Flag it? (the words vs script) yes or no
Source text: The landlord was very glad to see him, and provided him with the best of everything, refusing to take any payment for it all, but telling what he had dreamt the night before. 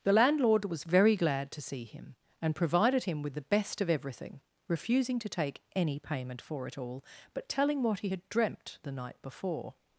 no